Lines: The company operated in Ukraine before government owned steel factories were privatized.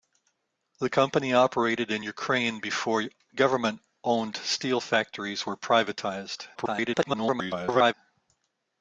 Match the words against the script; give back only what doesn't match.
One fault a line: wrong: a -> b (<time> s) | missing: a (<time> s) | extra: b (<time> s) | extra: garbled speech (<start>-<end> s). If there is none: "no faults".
extra: garbled speech (6.5-7.9 s)